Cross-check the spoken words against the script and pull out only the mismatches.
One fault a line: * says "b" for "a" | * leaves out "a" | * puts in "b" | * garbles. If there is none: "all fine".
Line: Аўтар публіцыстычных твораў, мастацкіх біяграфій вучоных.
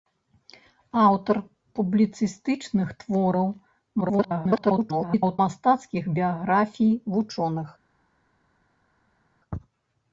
* garbles